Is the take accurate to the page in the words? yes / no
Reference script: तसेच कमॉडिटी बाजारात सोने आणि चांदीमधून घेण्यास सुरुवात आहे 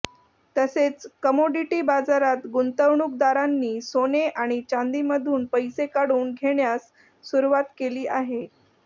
no